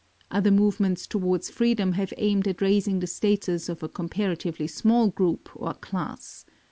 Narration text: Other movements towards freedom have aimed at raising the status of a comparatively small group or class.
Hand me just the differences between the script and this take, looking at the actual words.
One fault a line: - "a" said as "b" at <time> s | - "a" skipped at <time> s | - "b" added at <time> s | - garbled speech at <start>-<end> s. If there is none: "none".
none